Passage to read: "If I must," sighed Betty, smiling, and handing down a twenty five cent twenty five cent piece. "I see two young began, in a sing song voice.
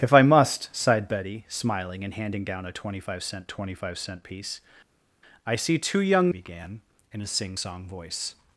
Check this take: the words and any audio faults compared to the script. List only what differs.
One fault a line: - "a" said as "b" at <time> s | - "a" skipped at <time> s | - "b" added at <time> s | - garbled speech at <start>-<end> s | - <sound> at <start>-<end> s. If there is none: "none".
none